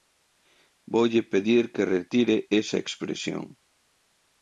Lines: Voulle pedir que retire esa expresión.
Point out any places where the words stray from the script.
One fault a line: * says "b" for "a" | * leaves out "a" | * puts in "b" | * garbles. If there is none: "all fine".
all fine